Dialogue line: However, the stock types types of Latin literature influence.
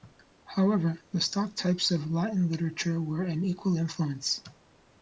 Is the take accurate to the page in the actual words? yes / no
no